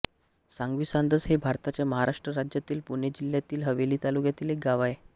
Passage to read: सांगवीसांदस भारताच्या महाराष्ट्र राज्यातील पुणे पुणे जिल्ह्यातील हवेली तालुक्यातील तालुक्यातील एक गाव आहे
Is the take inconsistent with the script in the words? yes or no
yes